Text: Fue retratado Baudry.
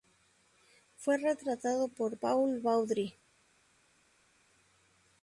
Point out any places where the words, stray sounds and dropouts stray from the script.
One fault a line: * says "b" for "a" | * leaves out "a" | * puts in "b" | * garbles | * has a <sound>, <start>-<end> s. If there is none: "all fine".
* puts in "por Paul"